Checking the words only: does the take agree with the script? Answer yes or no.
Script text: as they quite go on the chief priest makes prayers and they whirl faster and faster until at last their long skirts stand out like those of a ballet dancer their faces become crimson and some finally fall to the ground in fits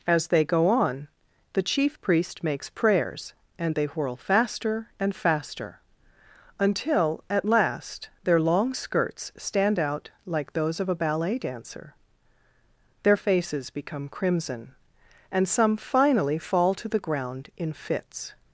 no